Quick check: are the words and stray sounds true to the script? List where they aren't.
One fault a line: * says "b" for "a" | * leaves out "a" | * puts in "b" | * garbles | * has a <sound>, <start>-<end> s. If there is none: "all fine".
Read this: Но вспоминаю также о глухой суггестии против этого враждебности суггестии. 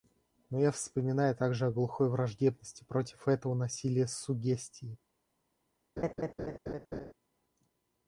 * puts in "я"
* says "враждебности" for "суггестии"
* says "насилия" for "враждебности"
* has a laugh, 6.0-7.1 s